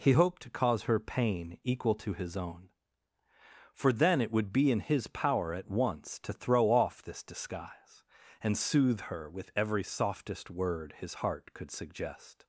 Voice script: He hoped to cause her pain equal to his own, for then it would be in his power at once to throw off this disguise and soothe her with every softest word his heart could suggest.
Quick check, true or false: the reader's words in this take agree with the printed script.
true